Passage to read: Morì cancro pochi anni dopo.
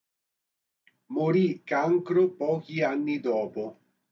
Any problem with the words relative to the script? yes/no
no